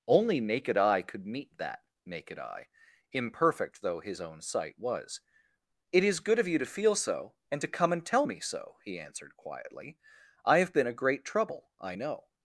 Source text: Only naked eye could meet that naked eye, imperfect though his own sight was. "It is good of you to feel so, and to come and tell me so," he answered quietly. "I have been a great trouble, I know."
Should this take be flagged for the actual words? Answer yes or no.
no